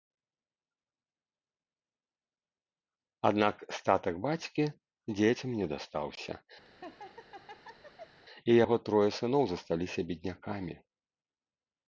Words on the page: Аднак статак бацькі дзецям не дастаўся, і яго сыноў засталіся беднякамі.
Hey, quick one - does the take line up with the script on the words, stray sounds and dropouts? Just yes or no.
no